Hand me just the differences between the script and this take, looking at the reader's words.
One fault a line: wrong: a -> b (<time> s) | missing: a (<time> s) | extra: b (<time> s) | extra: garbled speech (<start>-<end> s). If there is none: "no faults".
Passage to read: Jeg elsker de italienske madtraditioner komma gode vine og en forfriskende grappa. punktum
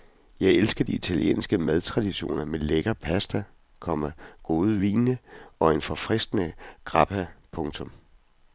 extra: med lækker pasta (2.5 s)